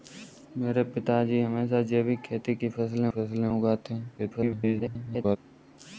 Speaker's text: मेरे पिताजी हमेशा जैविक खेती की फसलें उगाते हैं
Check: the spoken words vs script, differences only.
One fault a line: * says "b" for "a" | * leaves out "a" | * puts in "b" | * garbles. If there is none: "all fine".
* puts in "फसलें"
* garbles